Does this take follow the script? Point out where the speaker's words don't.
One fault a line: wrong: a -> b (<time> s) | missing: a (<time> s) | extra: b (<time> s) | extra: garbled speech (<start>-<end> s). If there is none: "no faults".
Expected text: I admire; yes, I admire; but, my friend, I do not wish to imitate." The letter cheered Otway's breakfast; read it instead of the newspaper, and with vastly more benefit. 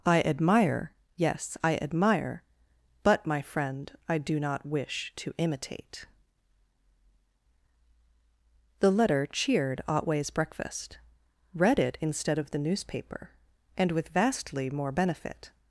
no faults